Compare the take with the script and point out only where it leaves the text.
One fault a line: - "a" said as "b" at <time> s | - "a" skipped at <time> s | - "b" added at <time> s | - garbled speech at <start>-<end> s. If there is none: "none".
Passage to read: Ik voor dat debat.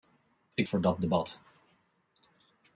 none